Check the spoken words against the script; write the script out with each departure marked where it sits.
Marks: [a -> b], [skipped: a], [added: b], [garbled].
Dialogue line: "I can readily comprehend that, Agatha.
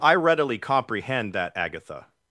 "I [skipped: can] readily comprehend that, Agatha.